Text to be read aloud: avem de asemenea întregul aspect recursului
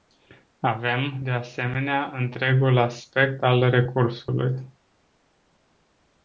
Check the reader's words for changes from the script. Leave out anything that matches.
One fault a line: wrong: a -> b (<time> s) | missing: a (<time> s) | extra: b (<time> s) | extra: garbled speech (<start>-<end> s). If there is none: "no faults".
extra: al (3.4 s)